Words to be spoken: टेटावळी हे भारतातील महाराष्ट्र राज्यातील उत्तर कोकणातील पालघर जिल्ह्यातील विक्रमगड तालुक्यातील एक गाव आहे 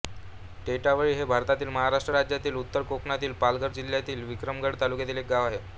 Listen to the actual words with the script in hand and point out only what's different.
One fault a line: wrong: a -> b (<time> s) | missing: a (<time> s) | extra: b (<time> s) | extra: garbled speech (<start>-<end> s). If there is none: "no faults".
no faults